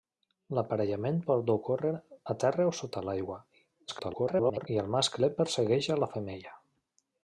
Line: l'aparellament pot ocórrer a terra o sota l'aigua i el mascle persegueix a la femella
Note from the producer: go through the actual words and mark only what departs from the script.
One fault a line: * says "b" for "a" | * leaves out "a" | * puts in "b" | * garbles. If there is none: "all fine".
* garbles